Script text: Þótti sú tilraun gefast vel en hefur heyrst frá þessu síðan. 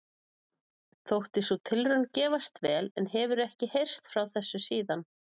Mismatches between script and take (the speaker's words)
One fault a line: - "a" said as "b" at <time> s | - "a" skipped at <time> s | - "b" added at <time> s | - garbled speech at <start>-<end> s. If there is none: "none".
- "ekki" added at 3.5 s